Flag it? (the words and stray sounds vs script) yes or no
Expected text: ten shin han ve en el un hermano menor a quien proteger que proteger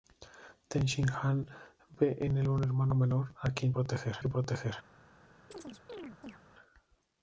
yes